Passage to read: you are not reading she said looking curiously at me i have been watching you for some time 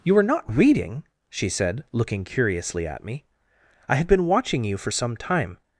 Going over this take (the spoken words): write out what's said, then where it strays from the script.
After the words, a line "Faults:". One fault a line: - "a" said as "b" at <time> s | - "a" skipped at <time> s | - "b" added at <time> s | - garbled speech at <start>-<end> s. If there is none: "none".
you are not reading she said looking curiously at me i have been watching you for some time
Faults:
none